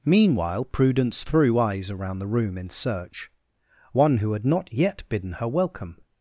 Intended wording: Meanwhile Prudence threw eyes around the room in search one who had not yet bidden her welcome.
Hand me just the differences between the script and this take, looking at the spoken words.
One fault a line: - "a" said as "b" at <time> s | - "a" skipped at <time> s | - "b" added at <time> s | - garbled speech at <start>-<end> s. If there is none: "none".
none